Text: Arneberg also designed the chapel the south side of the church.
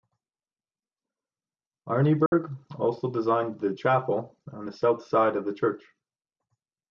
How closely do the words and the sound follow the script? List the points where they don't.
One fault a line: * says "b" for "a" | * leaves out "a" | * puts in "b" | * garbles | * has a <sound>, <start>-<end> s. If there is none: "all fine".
* has a dropout, 2.3-2.3 s
* puts in "on"